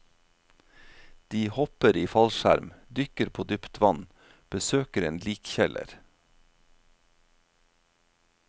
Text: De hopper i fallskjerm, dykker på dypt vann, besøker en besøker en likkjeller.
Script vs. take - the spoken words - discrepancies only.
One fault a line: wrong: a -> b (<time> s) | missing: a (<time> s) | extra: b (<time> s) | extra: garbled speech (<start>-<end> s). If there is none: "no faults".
missing: besøker en (5.2 s)